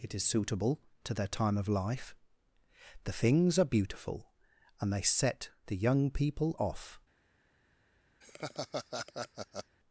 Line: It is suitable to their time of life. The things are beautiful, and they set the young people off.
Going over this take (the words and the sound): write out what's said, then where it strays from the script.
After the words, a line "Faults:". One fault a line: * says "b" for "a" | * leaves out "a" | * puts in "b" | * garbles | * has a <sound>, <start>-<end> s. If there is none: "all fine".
It is suitable to their time of life. The things are beautiful, and they set the young people off.
Faults:
* has a laugh, 8.2-9.8 s